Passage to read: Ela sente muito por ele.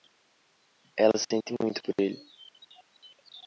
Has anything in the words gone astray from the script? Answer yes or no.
no